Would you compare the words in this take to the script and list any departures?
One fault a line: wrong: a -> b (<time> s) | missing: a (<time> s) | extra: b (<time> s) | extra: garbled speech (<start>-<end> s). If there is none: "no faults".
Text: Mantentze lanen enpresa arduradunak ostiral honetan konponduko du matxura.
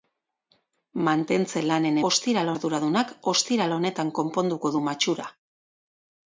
wrong: enpresa -> ostiral (2.1 s)